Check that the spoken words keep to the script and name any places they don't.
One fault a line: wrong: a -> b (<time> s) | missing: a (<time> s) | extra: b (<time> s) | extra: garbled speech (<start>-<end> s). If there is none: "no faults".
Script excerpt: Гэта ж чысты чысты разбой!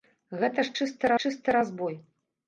no faults